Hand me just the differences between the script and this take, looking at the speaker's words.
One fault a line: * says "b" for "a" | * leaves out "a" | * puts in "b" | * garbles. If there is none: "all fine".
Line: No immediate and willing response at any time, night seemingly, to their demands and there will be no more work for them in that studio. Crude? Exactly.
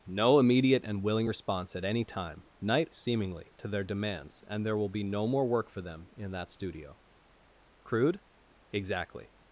all fine